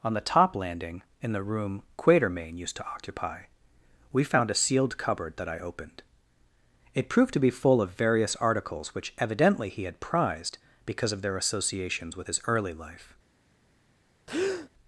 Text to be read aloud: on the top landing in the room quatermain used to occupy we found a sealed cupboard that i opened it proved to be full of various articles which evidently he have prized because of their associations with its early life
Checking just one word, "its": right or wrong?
wrong